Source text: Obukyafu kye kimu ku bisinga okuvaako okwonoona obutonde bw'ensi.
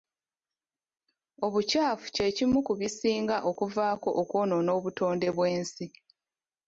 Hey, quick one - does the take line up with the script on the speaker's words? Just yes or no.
yes